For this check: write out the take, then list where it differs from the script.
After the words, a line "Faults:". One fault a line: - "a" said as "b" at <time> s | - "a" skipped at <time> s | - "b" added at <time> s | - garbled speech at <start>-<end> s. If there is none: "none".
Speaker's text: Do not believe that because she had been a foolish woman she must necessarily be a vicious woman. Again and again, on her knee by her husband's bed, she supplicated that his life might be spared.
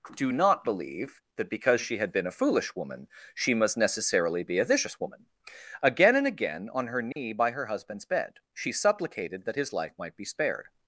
Do not believe that because she had been a foolish woman she must necessarily be a vicious woman. Again and again, on her knee by her husband's bed, she supplicated that his life might be spared.
Faults:
none